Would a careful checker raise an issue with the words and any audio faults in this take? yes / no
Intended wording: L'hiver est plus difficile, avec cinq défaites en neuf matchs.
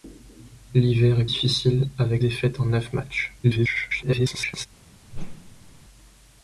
yes